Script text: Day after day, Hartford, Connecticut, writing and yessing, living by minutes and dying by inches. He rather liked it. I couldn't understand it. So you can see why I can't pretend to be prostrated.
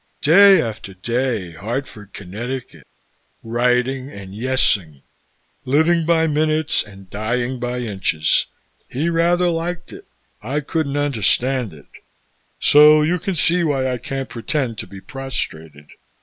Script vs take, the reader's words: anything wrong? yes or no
no